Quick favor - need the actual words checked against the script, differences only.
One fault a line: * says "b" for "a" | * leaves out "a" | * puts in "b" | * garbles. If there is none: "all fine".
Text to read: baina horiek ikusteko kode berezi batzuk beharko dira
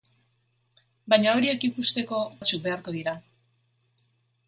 * leaves out "kode berezi"